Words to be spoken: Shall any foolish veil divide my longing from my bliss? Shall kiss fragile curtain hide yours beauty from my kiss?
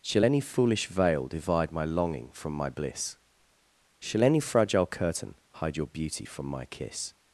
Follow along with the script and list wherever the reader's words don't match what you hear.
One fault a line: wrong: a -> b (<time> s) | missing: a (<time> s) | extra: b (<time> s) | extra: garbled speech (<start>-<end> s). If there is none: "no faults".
wrong: kiss -> any (4.2 s)
wrong: yours -> your (5.8 s)